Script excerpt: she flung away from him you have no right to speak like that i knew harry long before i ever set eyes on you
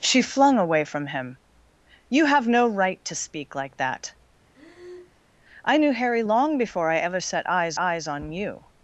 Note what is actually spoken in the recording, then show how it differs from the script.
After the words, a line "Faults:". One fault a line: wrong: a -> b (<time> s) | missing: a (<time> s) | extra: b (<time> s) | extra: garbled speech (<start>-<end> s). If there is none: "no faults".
she flung away from him you have no right to speak like that i knew harry long before i ever set eyes eyes on you
Faults:
extra: eyes (7.8 s)